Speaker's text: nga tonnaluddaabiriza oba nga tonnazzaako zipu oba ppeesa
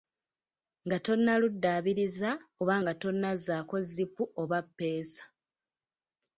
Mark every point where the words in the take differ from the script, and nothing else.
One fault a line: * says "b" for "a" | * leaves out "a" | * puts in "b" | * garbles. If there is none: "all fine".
all fine